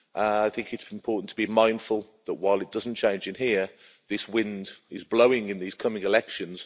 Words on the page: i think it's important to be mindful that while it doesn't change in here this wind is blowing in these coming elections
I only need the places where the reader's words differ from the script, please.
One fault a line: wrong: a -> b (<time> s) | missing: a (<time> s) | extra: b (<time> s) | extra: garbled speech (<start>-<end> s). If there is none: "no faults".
no faults